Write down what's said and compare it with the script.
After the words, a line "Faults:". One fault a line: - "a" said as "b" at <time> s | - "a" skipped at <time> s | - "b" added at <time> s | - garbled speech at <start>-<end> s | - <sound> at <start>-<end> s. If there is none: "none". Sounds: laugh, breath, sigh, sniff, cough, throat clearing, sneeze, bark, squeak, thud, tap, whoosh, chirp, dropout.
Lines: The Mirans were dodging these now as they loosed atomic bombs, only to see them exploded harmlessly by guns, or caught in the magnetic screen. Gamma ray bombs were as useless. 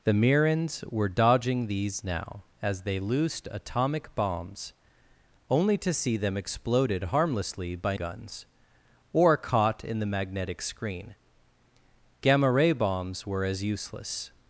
The Mirans were dodging these now as they loosed atomic bombs, only to see them exploded harmlessly by guns, or caught in the magnetic screen. Gamma ray bombs were as useless.
Faults:
none